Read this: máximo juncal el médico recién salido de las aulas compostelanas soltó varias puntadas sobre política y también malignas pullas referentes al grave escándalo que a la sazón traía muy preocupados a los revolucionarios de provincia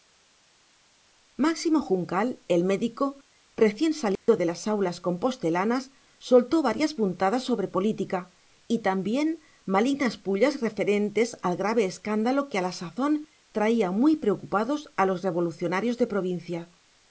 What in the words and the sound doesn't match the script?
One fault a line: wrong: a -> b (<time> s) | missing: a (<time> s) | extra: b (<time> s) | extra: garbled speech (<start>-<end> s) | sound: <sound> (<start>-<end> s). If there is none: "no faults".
sound: dropout (4.2-4.3 s)